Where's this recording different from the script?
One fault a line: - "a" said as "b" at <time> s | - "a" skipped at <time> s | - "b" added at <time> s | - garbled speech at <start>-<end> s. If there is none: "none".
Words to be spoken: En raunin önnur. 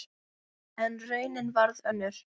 - "varð" added at 1.6 s